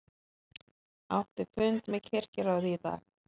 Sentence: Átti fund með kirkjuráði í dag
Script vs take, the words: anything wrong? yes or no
no